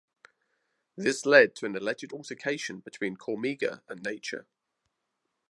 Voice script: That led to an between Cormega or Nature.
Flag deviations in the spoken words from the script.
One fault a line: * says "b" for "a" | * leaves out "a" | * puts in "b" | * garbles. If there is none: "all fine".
* says "This" for "That"
* puts in "alleged altercation"
* says "and" for "or"